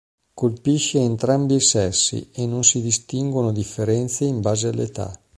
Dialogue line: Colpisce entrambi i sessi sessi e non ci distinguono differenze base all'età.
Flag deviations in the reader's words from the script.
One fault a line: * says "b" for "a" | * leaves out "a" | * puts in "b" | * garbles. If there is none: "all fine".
* leaves out "sessi"
* says "si" for "ci"
* puts in "in"